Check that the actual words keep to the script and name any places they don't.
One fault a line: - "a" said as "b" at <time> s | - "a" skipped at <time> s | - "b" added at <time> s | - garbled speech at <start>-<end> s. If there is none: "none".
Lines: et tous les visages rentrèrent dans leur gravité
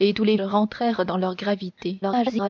- "visages" skipped at 0.3 s
- garbled speech at 2.0-2.5 s